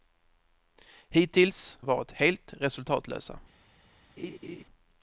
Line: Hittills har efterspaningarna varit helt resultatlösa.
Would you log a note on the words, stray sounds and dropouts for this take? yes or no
yes